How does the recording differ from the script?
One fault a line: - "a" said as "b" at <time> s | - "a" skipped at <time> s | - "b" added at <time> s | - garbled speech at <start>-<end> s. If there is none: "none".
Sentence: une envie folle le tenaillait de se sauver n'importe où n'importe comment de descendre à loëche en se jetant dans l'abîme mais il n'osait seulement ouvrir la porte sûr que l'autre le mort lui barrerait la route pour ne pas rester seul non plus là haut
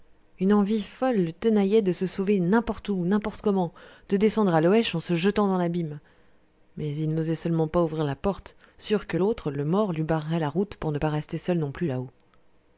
- "pas" added at 7.7 s